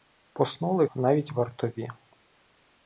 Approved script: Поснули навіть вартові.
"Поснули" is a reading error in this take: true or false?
false